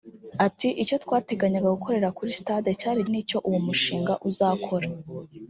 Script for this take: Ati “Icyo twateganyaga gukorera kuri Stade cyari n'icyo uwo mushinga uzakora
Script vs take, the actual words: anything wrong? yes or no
no